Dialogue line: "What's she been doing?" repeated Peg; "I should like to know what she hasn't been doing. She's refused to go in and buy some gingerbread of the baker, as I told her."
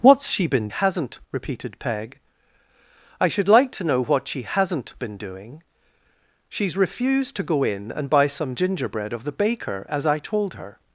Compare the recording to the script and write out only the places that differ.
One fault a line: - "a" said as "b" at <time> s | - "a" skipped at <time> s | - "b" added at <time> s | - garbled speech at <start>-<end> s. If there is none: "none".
- "doing" said as "hasn't" at 0.7 s